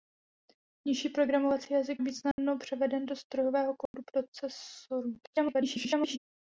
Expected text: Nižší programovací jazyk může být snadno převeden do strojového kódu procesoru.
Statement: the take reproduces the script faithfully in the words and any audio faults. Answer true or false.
false